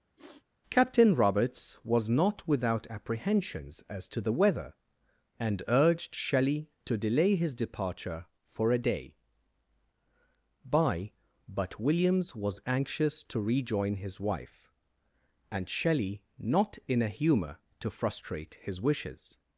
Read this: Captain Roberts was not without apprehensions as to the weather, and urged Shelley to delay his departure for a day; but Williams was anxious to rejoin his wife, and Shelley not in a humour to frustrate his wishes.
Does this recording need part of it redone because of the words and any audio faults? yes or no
yes